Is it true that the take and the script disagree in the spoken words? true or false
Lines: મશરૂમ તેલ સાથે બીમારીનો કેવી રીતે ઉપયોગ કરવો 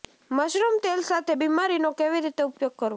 false